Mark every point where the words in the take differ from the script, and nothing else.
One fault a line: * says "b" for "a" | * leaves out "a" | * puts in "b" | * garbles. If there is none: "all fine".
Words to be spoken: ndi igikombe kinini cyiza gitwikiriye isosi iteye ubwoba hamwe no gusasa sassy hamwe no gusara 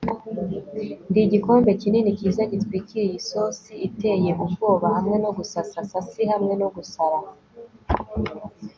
all fine